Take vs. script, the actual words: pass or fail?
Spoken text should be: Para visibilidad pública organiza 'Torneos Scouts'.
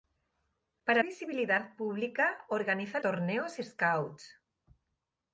pass